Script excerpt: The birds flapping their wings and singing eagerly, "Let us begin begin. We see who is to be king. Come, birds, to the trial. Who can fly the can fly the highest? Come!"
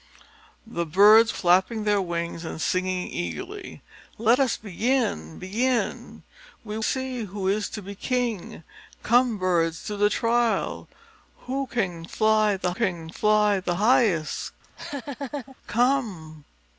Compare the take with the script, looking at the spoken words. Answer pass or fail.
pass